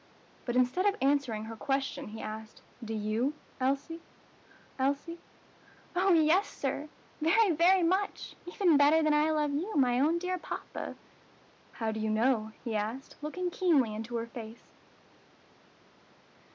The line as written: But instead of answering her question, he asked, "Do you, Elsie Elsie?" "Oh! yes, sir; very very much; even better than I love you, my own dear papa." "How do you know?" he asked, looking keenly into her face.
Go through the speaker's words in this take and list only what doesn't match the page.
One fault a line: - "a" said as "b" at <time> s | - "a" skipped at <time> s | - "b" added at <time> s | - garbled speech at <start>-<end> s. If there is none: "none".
none